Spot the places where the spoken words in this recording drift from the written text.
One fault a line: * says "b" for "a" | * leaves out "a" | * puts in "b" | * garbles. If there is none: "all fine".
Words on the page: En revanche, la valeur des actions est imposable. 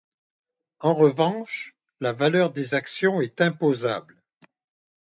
all fine